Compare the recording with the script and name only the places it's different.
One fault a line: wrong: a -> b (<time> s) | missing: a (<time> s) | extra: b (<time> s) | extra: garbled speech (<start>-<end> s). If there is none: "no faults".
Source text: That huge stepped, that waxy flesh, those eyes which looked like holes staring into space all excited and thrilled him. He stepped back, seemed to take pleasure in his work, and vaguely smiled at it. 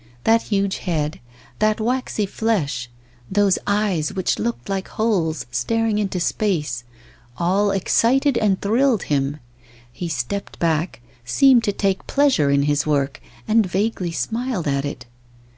wrong: stepped -> head (0.8 s)